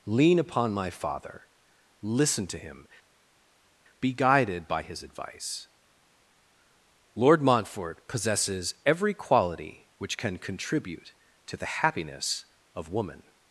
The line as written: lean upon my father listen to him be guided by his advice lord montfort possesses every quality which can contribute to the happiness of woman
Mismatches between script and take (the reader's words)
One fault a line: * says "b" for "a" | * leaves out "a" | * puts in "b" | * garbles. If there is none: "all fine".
all fine